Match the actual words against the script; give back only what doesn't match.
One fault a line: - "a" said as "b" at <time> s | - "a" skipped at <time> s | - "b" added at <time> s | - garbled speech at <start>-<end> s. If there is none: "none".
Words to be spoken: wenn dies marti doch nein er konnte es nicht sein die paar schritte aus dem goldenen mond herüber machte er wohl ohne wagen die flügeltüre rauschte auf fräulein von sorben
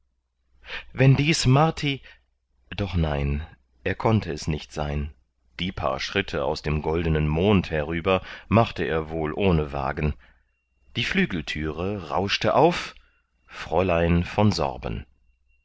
none